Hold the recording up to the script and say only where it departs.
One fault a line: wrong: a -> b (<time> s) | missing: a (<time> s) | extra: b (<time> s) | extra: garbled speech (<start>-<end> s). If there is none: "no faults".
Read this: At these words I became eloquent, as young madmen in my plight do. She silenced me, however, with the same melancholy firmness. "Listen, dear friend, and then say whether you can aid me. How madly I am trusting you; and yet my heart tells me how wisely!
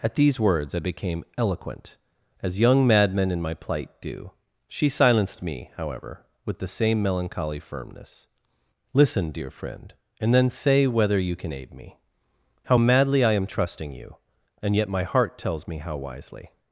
no faults